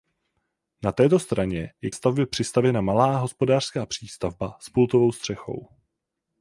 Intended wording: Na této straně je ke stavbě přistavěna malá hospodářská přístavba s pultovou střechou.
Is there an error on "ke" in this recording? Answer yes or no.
yes